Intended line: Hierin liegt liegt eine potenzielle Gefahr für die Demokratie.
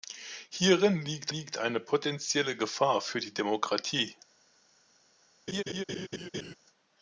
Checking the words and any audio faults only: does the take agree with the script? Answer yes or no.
no